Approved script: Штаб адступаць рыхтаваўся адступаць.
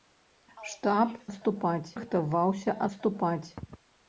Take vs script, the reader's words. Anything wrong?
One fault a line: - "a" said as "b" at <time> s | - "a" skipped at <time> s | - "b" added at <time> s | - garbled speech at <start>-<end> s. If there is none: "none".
none